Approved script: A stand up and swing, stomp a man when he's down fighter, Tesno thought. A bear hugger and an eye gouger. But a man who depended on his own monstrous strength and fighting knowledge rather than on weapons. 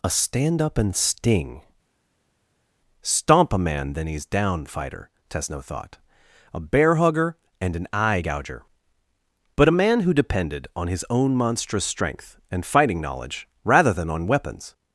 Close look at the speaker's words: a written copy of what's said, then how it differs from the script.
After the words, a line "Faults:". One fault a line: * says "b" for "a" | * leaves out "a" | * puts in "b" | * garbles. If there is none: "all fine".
A stand up and sting, stomp a man then he's down fighter, Tesno thought. A bear hugger and an eye gouger. But a man who depended on his own monstrous strength and fighting knowledge rather than on weapons.
Faults:
* says "sting" for "swing"
* says "then" for "when"